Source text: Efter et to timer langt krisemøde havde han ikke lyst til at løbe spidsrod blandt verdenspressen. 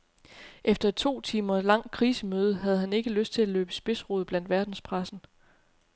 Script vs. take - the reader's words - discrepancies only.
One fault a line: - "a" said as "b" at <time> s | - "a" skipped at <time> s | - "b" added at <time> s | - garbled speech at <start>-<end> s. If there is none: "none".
none